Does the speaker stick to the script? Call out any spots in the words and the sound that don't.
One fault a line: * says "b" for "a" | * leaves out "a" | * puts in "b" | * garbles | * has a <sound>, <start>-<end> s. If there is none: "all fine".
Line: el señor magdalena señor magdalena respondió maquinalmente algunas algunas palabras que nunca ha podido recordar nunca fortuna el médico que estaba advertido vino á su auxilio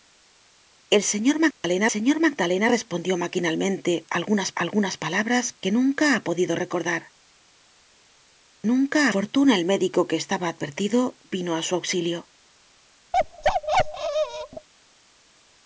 * has a dropout, 1.5-1.6 s
* has a bark, 13.1-14.7 s